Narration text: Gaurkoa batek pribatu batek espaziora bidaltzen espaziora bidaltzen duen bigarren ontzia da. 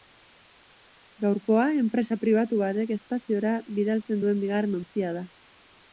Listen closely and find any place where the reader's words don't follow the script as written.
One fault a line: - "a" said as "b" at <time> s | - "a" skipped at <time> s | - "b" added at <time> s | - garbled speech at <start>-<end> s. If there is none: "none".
- "batek" said as "enpresa" at 1.8 s
- "espaziora bidaltzen" skipped at 4.2 s